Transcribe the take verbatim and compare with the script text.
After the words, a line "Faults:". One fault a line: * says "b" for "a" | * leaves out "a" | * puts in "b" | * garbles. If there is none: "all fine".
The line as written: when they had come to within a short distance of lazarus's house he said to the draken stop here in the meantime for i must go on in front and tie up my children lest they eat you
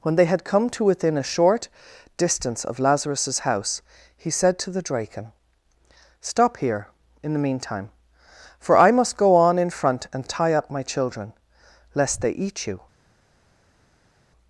when they had come to within a short distance of lazarus's house he said to the draken stop here in the meantime for i must go on in front and tie up my children lest they eat you
Faults:
all fine